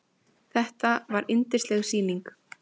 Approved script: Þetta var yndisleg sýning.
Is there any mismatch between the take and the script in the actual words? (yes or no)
no